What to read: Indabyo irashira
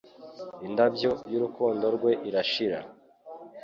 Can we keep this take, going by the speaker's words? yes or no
no